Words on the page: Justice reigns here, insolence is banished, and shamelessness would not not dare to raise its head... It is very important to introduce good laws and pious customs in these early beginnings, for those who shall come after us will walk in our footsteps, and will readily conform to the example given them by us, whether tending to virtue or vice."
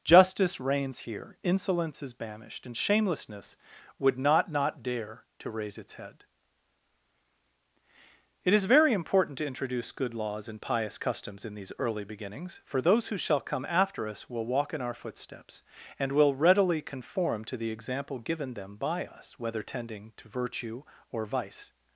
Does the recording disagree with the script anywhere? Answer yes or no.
no